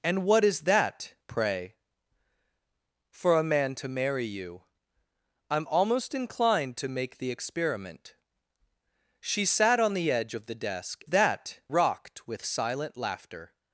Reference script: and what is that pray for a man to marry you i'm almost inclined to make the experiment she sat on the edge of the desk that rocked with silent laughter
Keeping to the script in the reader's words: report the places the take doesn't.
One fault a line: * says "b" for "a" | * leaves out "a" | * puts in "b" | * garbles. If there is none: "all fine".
all fine